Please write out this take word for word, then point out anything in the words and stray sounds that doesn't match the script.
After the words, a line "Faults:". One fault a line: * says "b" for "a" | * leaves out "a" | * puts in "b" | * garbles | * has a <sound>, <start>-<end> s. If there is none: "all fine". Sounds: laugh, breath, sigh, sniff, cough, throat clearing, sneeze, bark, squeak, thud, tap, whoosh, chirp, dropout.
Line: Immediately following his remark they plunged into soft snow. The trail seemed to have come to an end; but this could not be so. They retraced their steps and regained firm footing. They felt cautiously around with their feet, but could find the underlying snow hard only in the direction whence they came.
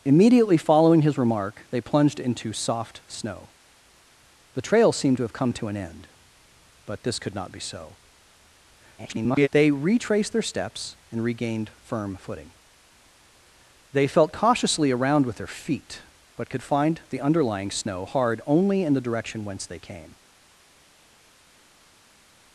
Immediately following his remark they plunged into soft snow. The trail seemed to have come to an end; but this could not be so. [garbled] They retraced their steps and regained firm footing. They felt cautiously around with their feet, but could find the underlying snow hard only in the direction whence they came.
Faults:
* garbles